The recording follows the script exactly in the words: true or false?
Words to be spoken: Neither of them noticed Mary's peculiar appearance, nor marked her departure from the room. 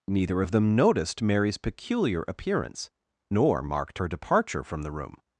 true